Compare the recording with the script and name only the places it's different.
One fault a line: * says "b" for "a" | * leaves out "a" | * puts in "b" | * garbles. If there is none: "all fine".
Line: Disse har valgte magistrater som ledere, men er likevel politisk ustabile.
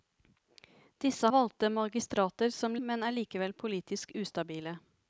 * leaves out "har"
* leaves out "ledere"